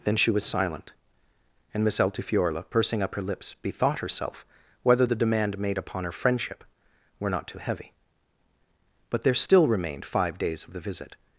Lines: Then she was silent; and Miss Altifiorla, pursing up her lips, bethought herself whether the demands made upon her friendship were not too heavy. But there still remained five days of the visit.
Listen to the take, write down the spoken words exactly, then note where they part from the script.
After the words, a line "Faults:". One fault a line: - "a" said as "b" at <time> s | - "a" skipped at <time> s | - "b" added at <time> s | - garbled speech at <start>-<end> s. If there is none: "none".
Then she was silent; and Miss Altifiorla, pursing up her lips, bethought herself whether the demand made upon her friendship were not too heavy. But there still remained five days of the visit.
Faults:
- "demands" said as "demand" at 5.2 s